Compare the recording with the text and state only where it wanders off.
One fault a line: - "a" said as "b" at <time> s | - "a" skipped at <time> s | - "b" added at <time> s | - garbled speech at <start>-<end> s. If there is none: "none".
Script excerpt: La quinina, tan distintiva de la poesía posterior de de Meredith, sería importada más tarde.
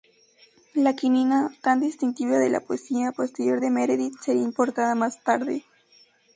- "de" skipped at 3.7 s